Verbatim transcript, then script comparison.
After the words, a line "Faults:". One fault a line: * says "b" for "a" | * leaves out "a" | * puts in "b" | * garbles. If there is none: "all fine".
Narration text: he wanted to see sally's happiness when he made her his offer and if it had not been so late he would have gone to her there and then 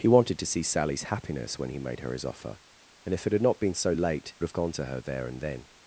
he wanted to see sally's happiness when he made her his offer and if it had not been so late have gone to her there and then
Faults:
* leaves out "he would"